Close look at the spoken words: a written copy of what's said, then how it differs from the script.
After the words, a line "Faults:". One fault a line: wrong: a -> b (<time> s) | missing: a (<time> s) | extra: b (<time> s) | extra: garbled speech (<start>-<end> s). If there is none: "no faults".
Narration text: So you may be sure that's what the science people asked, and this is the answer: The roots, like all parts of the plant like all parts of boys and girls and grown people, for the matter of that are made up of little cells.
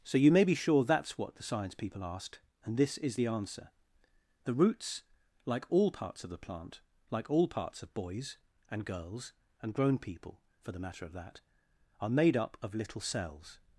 So you may be sure that's what the science people asked, and this is the answer: The roots, like all parts of the plant like all parts of boys and girls and grown people, for the matter of that are made up of little cells.
Faults:
no faults